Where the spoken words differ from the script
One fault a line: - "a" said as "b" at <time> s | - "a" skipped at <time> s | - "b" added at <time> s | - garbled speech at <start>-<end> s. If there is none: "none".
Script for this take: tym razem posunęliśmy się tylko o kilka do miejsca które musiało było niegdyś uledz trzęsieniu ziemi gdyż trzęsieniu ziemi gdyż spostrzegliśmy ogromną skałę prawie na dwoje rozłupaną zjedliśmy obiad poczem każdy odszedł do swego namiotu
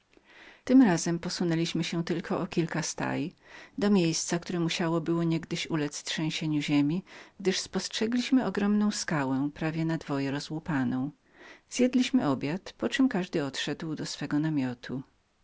- "staj" added at 2.8 s
- "trzęsieniu ziemi gdyż" skipped at 7.6 s